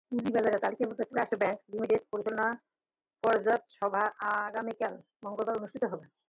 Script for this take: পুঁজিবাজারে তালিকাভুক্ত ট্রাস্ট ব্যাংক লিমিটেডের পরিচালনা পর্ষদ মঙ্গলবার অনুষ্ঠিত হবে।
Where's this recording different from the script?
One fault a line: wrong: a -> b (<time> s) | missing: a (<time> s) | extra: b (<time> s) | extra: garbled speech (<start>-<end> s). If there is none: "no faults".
extra: সভা আগামীকাল (3.8 s)